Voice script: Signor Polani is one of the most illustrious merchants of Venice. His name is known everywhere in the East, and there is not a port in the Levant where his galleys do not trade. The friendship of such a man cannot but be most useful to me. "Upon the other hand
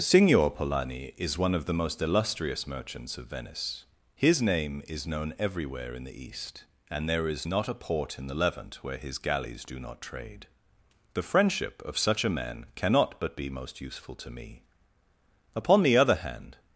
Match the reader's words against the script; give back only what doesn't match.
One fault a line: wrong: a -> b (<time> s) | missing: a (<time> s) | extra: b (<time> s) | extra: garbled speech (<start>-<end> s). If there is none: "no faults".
no faults